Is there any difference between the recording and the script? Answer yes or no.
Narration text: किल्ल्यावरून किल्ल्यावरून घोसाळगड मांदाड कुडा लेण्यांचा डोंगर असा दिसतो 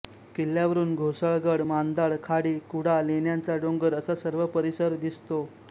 yes